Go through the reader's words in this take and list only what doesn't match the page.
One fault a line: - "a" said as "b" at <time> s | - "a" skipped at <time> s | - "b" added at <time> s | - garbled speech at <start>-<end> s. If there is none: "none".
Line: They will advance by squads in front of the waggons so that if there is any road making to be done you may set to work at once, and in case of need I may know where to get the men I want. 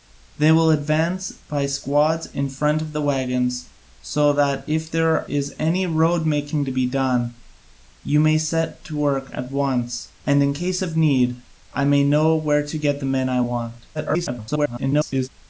- garbled speech at 13.9-15.3 s